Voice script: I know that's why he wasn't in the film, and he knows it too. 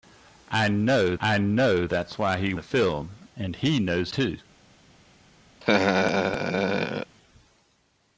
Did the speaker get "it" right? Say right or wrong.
wrong